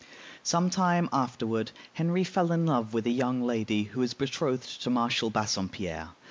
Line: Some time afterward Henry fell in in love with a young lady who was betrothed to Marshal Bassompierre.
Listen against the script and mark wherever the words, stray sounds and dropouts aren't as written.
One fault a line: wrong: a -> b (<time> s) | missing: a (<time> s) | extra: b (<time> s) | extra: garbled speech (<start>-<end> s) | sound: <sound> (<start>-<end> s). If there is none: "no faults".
missing: in (2.6 s)